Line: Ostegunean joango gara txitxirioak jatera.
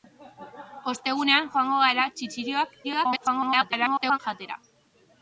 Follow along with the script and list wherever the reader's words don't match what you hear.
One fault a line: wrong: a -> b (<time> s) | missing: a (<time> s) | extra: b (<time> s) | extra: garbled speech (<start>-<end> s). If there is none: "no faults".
extra: garbled speech (2.8-4.2 s)